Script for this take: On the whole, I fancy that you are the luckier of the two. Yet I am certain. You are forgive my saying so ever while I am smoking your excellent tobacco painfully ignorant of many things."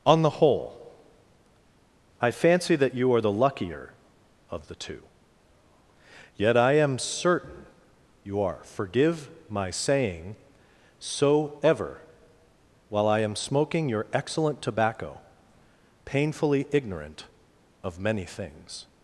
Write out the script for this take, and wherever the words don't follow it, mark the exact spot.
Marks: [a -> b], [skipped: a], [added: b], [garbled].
On the whole, I fancy that you are the luckier of the two. Yet I am certain. You are forgive my saying so ever while I am smoking your excellent tobacco painfully ignorant of many things."